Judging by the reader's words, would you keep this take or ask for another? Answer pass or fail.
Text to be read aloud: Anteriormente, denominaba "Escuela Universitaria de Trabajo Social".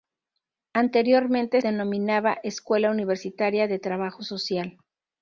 pass